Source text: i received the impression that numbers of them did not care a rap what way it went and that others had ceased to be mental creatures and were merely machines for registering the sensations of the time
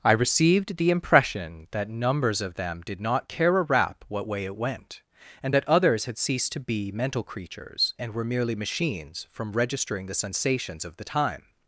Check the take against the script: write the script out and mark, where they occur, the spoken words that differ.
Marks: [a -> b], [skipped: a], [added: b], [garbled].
i received the impression that numbers of them did not care a rap what way it went and that others had ceased to be mental creatures and were merely machines [for -> from] registering the sensations of the time